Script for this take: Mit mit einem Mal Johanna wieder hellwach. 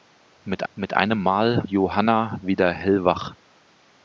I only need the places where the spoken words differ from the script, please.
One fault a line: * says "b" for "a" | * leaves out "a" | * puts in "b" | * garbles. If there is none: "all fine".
all fine